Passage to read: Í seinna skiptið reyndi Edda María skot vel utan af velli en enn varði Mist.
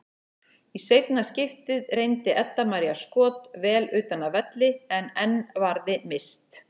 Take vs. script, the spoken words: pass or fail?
pass